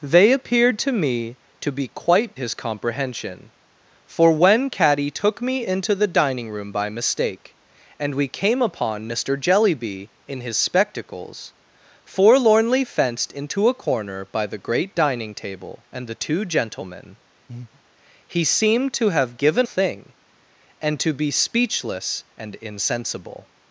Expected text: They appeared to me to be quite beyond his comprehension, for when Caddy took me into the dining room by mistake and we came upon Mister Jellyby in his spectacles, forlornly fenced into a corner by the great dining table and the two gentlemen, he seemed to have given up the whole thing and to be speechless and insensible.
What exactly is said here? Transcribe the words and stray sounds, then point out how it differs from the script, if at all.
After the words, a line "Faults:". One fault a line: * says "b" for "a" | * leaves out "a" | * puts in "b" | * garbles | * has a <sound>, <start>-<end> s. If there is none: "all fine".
They appeared to me to be quite his comprehension, for when Caddy took me into the dining room by mistake and we came upon Mister Jellyby in his spectacles, forlornly fenced into a corner by the great dining table and the two gentlemen, he seemed to have given thing and to be speechless and insensible.
Faults:
* leaves out "beyond"
* has a breath, 17.5-17.8 s
* leaves out "up the whole"